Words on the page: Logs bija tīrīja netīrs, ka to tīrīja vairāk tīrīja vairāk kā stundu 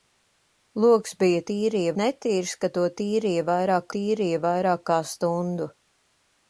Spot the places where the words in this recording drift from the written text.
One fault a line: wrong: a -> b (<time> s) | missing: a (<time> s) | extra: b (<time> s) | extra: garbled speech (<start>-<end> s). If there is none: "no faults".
no faults